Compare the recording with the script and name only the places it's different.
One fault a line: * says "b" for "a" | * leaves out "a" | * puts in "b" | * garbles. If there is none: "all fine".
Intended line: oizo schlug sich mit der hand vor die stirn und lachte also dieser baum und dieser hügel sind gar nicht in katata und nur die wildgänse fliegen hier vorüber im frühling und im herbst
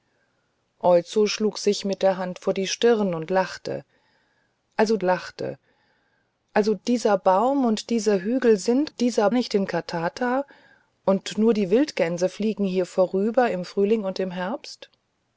* puts in "lachte also"
* says "dieser" for "gar"